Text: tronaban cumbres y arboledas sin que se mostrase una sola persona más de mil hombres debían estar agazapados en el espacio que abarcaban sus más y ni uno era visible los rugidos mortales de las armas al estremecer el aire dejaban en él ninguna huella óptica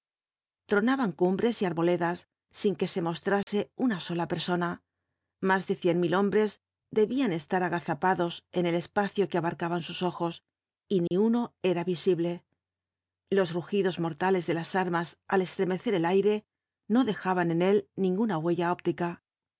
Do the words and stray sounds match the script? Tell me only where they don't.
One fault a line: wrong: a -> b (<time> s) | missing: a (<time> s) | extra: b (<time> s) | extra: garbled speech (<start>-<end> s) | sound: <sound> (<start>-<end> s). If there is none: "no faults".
sound: dropout (3.4-3.5 s)
extra: cien (5.7 s)
wrong: más -> ojos (10.0 s)
sound: dropout (11.1-11.1 s)
extra: no (16.9 s)